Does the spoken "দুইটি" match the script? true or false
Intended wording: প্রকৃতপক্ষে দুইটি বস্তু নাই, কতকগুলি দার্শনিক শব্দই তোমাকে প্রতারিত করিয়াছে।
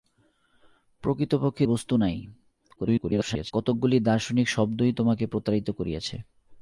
false